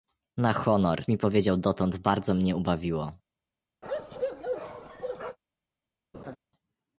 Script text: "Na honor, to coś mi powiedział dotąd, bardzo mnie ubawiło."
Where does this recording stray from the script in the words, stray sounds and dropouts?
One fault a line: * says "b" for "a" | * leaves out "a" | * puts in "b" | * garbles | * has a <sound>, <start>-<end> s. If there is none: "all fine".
* leaves out "to coś"
* has a bark, 3.8-5.4 s
* has a laugh, 6.1-6.4 s